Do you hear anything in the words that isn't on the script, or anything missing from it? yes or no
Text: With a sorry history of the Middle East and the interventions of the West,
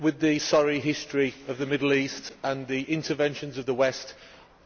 yes